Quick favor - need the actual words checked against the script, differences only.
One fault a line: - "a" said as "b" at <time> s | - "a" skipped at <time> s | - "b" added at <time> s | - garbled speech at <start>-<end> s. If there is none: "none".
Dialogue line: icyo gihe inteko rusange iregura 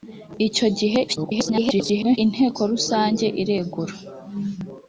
- garbled speech at 1.1-2.2 s